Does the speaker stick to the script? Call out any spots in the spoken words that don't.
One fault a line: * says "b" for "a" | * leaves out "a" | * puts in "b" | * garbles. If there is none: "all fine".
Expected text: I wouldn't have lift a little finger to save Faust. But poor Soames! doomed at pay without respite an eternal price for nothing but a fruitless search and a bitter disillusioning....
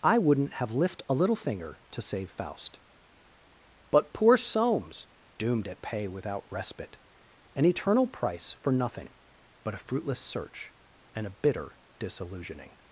all fine